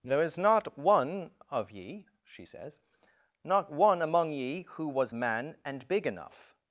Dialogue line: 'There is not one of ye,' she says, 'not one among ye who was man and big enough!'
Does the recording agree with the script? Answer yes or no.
yes